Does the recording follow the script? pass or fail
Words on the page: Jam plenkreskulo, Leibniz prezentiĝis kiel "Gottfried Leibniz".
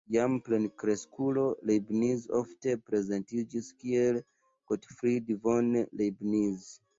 fail